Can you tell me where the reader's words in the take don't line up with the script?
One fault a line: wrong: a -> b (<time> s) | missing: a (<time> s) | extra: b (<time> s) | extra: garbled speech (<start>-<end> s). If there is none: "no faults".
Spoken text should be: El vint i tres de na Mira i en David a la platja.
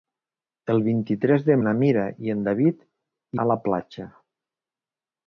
no faults